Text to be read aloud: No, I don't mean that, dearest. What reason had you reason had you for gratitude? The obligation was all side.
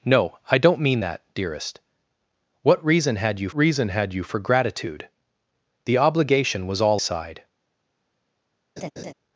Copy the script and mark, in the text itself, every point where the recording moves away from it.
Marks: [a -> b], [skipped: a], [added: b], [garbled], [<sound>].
No, I don't mean that, dearest. What reason had you reason had you for gratitude? The obligation was all side. [laugh]